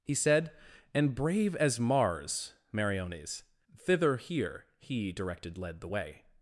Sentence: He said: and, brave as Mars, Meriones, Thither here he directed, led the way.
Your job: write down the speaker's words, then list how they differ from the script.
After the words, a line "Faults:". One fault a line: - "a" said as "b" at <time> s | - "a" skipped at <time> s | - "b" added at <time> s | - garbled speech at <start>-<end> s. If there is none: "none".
He said: and, brave as Mars, Meriones, Thither here he directed, led the way.
Faults:
none